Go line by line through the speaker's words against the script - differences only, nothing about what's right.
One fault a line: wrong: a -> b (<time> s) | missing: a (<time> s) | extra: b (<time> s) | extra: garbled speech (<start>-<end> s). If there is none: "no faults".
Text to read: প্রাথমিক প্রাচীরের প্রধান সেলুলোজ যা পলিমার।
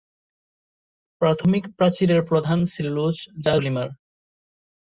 no faults